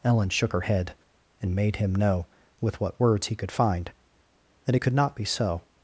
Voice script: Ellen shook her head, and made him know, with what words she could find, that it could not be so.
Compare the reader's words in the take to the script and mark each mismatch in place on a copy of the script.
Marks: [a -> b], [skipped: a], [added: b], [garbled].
Ellen shook her head, and made him know, with what words [she -> he] could find, that it could not be so.